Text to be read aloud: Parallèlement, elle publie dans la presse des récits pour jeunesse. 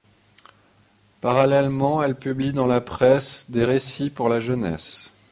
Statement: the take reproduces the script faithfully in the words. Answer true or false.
false